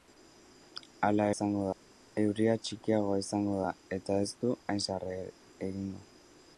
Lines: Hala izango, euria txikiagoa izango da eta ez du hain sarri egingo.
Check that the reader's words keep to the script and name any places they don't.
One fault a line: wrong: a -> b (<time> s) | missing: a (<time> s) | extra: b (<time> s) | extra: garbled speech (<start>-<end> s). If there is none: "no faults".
no faults